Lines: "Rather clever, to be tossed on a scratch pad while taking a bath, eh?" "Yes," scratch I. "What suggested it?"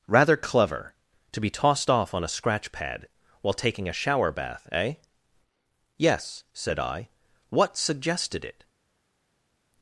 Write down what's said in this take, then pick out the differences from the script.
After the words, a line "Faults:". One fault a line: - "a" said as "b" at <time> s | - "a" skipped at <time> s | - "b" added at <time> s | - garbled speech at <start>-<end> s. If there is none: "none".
"Rather clever, to be tossed off on a scratch pad while taking a shower bath, eh?" "Yes," said I. "What suggested it?"
Faults:
- "off" added at 1.9 s
- "shower" added at 3.9 s
- "scratch" said as "said" at 6.5 s